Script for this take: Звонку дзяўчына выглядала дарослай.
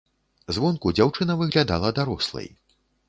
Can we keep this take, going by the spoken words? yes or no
yes